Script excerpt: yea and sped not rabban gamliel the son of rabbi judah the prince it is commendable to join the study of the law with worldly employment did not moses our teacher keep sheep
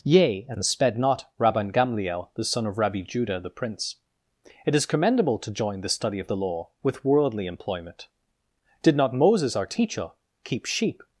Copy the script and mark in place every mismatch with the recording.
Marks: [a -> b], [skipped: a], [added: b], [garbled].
yea and sped not rabban gamliel the son of rabbi judah the prince it is commendable to join the study of the law with worldly employment did not moses our teacher keep sheep